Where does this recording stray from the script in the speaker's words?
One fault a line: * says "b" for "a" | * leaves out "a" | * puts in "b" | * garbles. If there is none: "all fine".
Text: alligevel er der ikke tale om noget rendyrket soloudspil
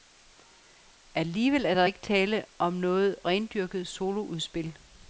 all fine